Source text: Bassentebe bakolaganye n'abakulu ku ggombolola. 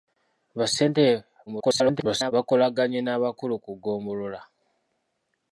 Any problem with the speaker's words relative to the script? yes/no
yes